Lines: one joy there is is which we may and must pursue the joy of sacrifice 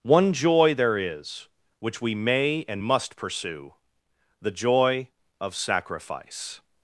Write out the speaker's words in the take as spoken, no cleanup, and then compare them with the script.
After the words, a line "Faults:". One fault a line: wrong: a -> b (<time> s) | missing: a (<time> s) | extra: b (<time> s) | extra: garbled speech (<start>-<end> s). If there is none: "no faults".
one joy there is which we may and must pursue the joy of sacrifice
Faults:
missing: is (1.5 s)